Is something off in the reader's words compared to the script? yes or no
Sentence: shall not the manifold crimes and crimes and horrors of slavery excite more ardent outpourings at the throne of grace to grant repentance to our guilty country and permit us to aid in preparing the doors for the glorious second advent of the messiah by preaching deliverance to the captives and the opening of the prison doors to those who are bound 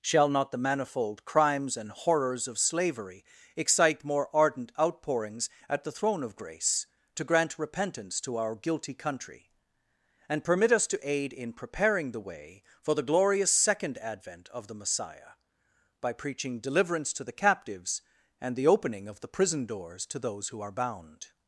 yes